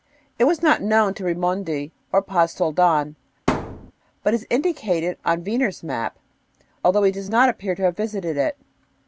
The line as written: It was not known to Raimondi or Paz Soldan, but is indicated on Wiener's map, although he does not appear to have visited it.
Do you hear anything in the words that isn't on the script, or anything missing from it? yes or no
no